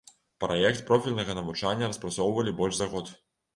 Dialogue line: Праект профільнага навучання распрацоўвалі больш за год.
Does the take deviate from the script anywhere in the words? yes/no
no